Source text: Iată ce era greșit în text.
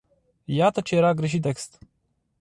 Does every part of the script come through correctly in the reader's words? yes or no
no